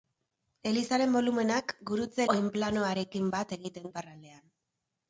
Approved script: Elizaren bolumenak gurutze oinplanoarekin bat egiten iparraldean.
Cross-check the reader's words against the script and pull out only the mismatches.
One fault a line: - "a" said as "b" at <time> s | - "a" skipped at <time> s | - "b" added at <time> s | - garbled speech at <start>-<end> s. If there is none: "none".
none